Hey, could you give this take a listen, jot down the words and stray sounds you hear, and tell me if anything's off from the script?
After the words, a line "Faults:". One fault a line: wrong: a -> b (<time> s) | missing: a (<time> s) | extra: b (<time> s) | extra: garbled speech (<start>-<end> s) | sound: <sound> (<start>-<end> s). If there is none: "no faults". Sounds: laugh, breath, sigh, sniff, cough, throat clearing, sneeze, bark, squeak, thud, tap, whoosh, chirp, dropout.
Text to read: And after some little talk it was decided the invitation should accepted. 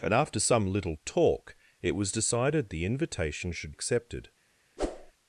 And after some little talk it was decided the invitation should accepted.
Faults:
sound: whoosh (4.8-5.1 s)